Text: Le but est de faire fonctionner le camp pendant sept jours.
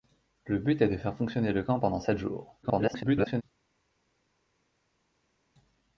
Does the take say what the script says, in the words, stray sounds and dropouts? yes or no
no